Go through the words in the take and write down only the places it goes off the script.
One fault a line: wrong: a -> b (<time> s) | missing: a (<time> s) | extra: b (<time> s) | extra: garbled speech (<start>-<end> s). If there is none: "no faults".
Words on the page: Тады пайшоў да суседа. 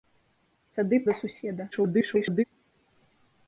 missing: пайшоў (1.0 s)
extra: garbled speech (1.7-2.4 s)